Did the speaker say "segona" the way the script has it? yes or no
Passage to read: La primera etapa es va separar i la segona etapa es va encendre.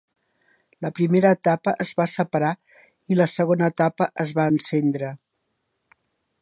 yes